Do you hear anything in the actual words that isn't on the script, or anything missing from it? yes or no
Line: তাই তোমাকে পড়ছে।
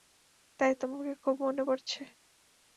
yes